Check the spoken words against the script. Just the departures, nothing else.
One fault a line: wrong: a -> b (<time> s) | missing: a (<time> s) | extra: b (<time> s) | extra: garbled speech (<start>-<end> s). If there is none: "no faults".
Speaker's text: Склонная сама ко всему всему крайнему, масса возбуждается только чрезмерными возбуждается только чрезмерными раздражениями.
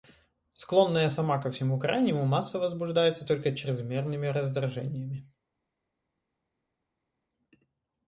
missing: всему (1.8 s)
missing: возбуждается только чрезмерными (4.3 s)